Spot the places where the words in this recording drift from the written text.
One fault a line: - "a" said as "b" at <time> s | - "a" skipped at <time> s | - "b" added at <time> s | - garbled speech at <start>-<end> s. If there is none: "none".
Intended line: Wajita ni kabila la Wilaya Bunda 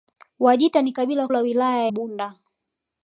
none